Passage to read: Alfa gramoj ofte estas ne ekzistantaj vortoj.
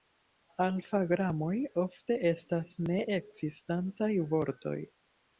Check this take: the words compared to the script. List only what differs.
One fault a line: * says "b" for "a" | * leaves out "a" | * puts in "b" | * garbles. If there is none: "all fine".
all fine